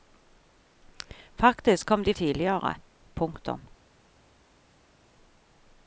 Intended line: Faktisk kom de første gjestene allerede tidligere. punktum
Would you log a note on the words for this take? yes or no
yes